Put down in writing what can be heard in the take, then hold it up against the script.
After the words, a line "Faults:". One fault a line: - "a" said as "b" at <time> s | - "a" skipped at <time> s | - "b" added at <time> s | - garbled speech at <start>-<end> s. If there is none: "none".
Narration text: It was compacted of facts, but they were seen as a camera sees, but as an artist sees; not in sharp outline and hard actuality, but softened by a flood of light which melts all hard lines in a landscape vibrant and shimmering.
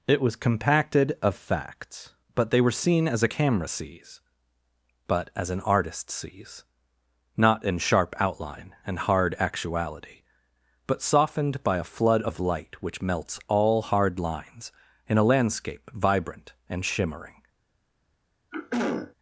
It was compacted of facts, but they were seen as a camera sees, but as an artist sees; not in sharp outline and hard actuality, but softened by a flood of light which melts all hard lines in a landscape vibrant and shimmering.
Faults:
none